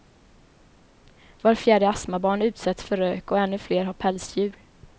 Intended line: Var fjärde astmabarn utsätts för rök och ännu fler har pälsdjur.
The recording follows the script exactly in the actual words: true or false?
true